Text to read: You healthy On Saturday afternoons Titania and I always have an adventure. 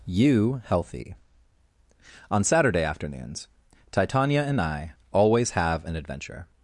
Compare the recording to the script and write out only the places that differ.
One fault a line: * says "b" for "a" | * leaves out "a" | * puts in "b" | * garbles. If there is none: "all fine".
all fine